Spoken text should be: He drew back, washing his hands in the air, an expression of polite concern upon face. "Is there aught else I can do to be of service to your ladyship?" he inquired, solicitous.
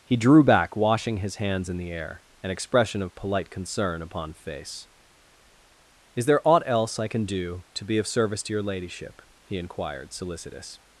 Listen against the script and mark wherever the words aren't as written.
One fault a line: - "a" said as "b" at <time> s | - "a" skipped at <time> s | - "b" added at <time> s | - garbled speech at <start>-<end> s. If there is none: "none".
none